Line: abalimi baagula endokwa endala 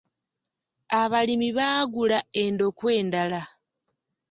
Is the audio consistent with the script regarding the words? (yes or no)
yes